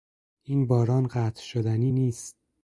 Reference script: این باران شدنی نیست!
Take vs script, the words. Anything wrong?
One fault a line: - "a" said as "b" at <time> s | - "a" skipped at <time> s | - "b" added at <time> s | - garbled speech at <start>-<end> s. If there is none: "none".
- "قطع" added at 1.1 s